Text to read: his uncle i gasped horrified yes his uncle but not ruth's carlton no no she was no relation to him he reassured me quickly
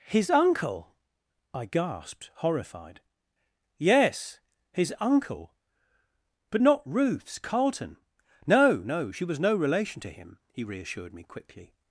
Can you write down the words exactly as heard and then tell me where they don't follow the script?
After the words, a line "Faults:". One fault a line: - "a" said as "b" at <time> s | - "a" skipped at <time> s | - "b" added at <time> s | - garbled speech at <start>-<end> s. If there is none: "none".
his uncle i gasped horrified yes his uncle but not ruth's carlton no no she was no relation to him he reassured me quickly
Faults:
none